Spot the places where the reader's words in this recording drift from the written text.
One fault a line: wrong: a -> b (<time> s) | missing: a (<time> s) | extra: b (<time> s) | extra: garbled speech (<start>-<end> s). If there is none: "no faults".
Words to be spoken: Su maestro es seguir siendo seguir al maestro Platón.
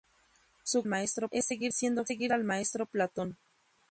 no faults